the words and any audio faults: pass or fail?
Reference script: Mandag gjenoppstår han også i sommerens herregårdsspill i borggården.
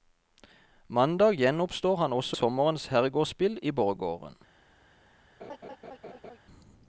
fail